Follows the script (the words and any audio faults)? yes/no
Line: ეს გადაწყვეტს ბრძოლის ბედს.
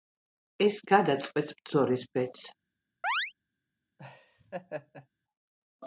no